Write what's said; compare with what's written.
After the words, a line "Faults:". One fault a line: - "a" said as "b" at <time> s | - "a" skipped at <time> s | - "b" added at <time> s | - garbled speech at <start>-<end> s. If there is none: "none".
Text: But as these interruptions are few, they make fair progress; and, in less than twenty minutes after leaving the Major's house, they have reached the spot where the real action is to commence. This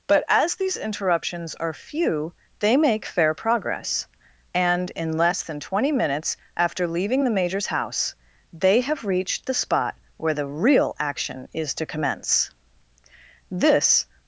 But as these interruptions are few, they make fair progress; and, in less than twenty minutes after leaving the Major's house, they have reached the spot where the real action is to commence. This
Faults:
none